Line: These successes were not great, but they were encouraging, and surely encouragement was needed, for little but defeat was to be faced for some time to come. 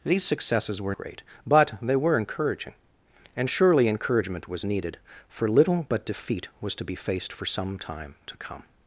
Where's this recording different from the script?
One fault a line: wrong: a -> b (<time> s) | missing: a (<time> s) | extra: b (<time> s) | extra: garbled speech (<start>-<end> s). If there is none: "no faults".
missing: not (0.9 s)